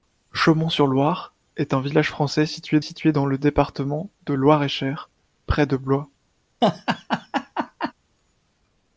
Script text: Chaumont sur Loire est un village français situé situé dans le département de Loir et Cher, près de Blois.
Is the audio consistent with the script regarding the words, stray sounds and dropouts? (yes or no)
no